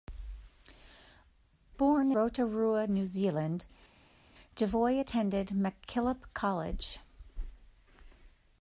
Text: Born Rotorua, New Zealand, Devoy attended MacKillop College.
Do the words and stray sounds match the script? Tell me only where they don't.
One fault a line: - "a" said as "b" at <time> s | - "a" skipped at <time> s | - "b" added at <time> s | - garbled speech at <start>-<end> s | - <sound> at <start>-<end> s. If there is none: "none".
none